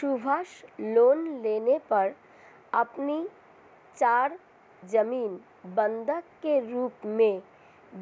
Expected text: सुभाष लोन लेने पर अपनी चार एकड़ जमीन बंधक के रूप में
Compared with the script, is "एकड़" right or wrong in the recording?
wrong